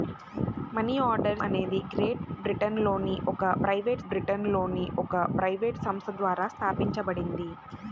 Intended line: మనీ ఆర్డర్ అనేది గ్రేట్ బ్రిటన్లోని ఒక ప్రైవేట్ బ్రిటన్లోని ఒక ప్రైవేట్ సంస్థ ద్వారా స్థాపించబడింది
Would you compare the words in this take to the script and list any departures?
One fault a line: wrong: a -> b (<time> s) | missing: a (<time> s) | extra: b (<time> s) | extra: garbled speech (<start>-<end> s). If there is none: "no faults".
no faults